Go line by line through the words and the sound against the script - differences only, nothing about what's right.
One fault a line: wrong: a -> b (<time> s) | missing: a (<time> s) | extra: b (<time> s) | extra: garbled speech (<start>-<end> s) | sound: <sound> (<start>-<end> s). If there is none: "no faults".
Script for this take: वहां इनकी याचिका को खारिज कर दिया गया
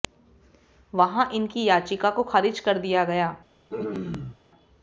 sound: throat clearing (3.7-4.4 s)